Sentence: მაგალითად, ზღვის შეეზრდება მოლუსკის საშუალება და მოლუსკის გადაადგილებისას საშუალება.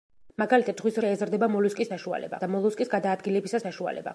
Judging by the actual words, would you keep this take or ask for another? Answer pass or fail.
pass